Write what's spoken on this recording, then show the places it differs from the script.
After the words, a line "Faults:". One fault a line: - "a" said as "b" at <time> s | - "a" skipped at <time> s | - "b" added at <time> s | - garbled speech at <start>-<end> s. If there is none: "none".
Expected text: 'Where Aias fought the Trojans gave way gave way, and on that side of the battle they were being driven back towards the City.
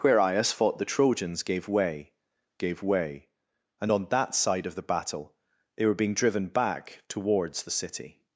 'Where Aias fought the Trojans gave way gave way, and on that side of the battle they were being driven back towards the City.
Faults:
none